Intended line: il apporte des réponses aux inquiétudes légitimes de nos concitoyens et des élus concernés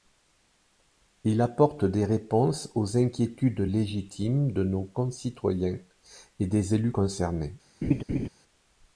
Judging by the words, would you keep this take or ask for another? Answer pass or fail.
pass